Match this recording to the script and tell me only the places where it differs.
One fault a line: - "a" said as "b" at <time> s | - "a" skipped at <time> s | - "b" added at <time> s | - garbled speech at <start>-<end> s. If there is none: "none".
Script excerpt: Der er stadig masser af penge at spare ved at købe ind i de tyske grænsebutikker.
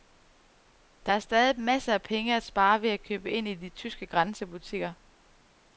none